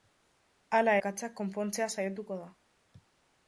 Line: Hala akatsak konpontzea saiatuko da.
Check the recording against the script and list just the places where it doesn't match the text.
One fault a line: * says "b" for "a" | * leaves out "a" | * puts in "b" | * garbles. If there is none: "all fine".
all fine